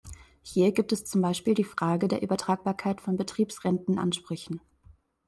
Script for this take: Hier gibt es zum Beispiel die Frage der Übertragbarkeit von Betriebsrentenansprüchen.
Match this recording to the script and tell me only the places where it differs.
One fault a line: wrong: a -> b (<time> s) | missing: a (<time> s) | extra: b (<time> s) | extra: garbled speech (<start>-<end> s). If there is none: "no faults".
no faults